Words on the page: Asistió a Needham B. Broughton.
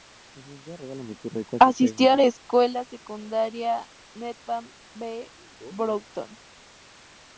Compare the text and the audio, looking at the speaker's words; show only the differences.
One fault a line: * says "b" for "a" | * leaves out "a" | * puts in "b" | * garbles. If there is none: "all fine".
* puts in "la escuela secundaria"